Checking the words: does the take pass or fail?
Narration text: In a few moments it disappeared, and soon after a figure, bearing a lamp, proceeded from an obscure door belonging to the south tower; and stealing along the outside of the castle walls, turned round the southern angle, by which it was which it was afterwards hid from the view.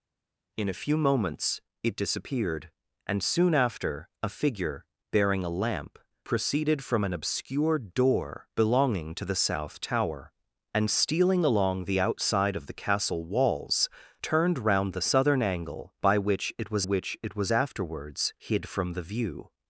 pass